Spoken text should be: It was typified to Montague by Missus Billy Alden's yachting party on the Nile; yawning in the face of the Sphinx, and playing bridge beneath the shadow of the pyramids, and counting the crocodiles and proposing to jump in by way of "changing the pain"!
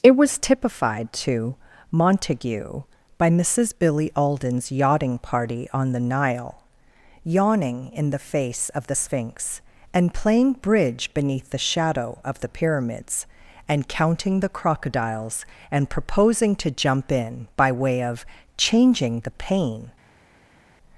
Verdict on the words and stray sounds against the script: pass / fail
pass